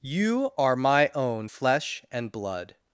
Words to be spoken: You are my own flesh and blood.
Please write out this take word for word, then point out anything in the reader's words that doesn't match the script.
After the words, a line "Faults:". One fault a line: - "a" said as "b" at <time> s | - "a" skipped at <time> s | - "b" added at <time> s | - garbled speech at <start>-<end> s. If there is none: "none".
You are my own flesh and blood.
Faults:
none